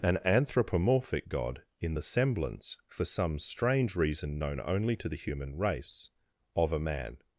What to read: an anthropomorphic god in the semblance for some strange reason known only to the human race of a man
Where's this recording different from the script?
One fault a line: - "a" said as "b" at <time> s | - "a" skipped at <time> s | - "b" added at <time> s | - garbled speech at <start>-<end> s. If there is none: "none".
none